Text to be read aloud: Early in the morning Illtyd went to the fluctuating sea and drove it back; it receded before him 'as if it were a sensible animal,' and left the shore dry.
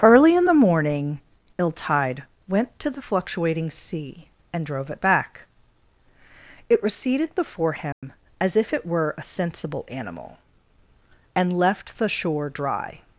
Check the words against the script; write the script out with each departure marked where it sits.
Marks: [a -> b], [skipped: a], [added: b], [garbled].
Early in the morning Illtyd went to the fluctuating sea and drove it back; it receded before him 'as if it were a sensible animal,' and left the shore dry.